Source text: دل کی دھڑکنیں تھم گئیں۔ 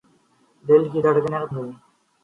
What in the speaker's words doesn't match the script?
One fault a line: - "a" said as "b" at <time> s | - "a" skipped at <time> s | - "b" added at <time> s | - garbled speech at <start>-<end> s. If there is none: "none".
- "تھم" skipped at 1.4 s